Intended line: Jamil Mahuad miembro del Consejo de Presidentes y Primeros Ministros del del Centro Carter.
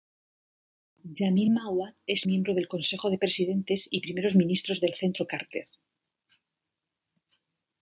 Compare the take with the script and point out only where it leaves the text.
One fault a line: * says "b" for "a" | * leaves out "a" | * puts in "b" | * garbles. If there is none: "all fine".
* puts in "es"
* leaves out "del"